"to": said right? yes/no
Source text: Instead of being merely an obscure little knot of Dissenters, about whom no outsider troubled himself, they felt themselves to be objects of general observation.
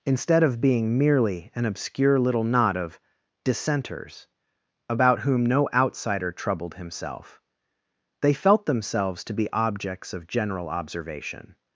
yes